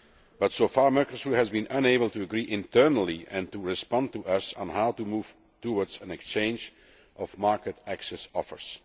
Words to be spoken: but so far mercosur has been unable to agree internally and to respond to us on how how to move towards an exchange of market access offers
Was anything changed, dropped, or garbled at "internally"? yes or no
no